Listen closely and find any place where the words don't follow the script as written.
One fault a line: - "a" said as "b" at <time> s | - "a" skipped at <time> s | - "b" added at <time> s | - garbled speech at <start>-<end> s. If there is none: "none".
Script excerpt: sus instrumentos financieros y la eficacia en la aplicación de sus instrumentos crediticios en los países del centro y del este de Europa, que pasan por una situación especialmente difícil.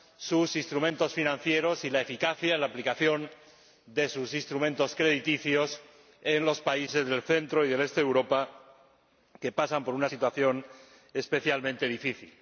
none